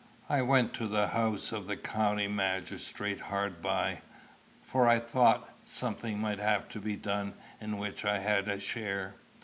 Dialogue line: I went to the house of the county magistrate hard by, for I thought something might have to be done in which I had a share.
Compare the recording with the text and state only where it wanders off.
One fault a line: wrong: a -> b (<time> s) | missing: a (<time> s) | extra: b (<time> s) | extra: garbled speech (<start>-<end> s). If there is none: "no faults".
no faults